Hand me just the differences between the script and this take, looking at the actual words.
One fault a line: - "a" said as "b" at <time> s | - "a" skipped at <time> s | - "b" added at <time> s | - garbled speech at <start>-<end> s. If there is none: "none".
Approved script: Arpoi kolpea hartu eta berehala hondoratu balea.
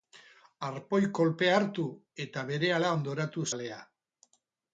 none